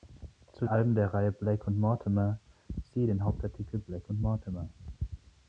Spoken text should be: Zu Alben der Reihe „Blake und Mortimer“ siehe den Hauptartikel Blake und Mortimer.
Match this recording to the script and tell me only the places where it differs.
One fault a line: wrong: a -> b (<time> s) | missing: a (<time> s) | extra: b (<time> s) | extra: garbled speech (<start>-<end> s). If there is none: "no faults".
no faults